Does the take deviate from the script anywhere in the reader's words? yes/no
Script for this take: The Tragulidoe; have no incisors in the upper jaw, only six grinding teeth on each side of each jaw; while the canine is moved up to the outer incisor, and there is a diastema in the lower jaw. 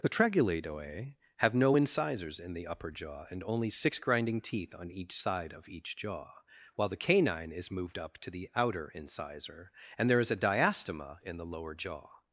yes